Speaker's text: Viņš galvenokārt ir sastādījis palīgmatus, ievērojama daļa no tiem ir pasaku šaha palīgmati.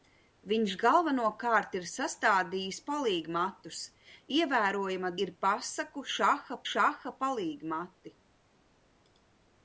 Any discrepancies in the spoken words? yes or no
yes